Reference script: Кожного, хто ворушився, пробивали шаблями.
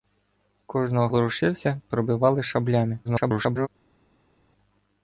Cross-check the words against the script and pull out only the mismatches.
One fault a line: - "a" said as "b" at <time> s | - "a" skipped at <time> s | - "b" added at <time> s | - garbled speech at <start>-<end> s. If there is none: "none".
- "хто" skipped at 1.1 s
- garbled speech at 3.0-3.7 s